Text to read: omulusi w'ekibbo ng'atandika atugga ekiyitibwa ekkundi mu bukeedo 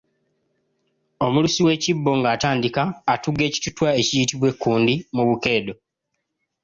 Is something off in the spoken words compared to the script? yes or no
yes